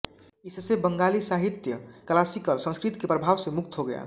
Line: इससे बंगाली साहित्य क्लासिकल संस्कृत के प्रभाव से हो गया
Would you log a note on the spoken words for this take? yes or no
yes